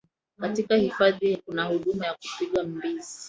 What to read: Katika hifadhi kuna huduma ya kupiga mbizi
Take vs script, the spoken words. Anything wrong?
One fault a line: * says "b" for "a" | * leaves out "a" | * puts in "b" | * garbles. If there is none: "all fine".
all fine